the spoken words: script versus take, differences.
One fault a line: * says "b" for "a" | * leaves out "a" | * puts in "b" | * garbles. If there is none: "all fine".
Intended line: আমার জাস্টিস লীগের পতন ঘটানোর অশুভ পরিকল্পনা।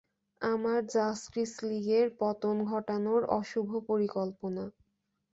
all fine